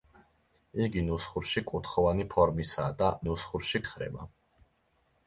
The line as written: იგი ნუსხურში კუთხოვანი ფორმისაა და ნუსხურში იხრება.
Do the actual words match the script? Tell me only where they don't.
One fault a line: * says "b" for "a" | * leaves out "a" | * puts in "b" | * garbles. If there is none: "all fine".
all fine